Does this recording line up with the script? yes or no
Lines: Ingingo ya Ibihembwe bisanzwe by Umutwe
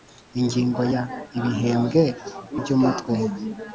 no